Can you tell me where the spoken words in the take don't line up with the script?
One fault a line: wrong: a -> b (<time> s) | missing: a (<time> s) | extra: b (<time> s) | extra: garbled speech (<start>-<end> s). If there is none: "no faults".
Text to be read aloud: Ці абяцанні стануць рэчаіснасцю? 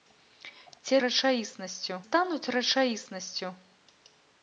wrong: абяцанні -> рэчаіснасцю (1.0 s)